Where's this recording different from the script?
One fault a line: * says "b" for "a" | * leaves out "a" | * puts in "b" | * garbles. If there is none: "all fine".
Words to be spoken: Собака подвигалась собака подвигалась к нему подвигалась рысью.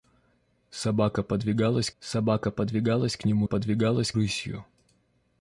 all fine